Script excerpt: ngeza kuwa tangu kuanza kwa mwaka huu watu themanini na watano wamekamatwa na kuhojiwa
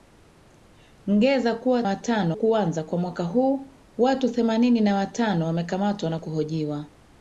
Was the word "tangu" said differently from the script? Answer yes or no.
yes